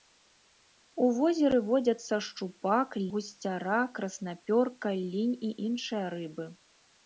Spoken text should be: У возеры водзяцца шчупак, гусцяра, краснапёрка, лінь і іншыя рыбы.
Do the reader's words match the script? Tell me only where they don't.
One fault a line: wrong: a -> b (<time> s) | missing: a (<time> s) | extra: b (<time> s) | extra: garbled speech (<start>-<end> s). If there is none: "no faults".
no faults